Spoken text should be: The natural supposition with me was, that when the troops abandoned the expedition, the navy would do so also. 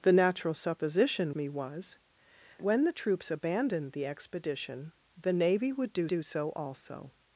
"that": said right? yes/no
no